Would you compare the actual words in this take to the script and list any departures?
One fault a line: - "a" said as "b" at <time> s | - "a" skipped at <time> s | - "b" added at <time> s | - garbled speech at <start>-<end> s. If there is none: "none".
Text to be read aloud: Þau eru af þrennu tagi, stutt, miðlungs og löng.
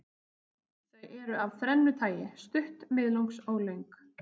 none